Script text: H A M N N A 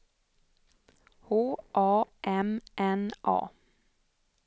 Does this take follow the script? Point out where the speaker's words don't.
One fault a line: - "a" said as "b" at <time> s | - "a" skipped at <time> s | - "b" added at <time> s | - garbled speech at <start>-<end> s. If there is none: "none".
- "N" skipped at 3.1 s